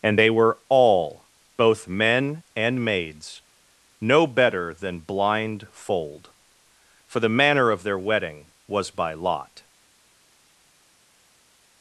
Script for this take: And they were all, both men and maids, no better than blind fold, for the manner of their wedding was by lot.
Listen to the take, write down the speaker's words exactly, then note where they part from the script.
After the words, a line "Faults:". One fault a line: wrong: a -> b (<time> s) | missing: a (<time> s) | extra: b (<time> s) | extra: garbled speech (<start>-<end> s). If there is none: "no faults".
And they were all, both men and maids, no better than blind fold, for the manner of their wedding was by lot.
Faults:
no faults